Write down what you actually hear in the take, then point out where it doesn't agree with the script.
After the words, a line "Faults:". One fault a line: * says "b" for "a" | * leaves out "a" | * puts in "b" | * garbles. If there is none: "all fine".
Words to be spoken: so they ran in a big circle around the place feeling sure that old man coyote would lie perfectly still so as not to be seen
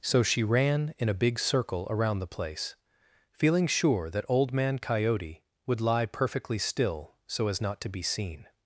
so she ran in a big circle around the place feeling sure that old man coyote would lie perfectly still so as not to be seen
Faults:
* says "she" for "they"